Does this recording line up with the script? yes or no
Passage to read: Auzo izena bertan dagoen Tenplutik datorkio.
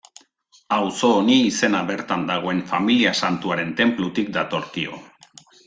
no